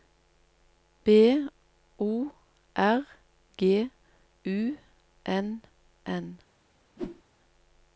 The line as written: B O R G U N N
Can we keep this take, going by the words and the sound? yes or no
no